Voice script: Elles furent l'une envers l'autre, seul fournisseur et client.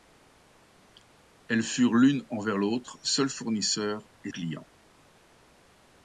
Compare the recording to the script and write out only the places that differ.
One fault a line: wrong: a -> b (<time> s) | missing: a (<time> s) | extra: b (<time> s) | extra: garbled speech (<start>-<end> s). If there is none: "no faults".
no faults